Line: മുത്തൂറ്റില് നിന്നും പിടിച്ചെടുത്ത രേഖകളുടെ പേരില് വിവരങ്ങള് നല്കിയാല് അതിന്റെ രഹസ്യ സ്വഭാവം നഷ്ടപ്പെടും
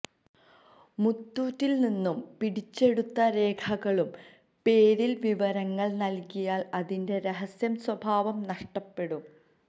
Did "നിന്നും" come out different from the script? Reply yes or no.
no